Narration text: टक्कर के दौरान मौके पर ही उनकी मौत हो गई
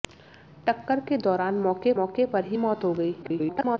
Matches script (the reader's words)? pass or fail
fail